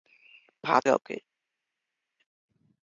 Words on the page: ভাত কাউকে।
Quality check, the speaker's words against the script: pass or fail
pass